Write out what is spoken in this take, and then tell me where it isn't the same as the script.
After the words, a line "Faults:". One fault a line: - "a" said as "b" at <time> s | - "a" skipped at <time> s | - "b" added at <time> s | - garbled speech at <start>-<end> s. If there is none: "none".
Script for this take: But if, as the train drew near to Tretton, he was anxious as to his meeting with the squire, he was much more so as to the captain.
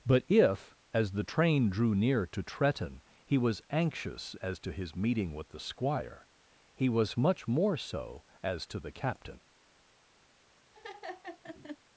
But if, as the train drew near to Tretton, he was anxious as to his meeting with the squire, he was much more so as to the captain.
Faults:
none